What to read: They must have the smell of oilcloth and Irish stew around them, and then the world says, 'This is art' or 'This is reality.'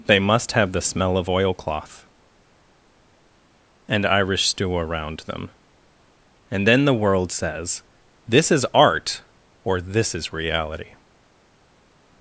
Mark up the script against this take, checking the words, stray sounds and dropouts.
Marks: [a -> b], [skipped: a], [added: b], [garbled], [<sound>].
They must have the smell of oilcloth and Irish stew around them, and then the world says, 'This is art' or 'This is reality.'